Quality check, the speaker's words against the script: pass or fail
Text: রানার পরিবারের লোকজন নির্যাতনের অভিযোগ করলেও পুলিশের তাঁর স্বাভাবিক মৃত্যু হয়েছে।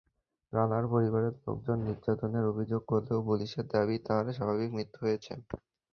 fail